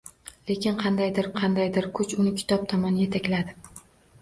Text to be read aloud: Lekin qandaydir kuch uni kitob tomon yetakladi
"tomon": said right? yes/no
yes